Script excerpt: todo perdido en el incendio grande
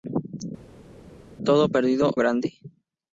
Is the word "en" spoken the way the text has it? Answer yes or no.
no